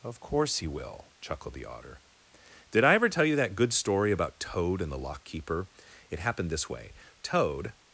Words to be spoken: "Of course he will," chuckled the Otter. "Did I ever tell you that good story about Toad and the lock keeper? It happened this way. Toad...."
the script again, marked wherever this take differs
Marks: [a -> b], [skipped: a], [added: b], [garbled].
"Of course he will," chuckled the Otter. "Did I ever tell you that good story about Toad and the lock keeper? It happened this way. Toad...."